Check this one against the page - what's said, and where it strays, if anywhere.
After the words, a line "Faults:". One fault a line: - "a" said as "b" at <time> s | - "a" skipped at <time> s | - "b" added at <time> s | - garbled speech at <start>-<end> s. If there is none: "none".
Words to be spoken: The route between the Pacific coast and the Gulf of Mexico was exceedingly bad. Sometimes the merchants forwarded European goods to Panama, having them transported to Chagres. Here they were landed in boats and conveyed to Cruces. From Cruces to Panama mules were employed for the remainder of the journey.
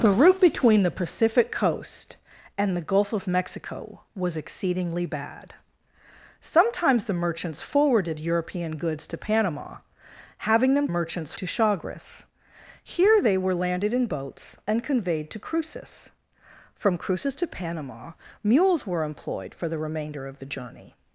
The route between the Pacific coast and the Gulf of Mexico was exceedingly bad. Sometimes the merchants forwarded European goods to Panama, having them merchants to Chagres. Here they were landed in boats and conveyed to Cruces. From Cruces to Panama mules were employed for the remainder of the journey.
Faults:
- "transported" said as "merchants" at 10.9 s